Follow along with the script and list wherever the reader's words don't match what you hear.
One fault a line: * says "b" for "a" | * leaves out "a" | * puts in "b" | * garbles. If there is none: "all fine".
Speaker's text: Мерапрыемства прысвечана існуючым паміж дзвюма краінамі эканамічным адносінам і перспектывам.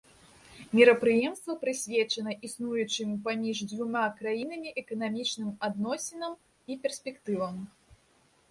all fine